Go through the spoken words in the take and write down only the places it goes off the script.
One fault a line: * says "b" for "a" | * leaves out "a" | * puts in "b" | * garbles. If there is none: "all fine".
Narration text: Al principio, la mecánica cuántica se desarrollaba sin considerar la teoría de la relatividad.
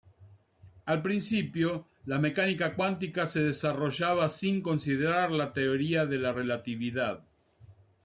all fine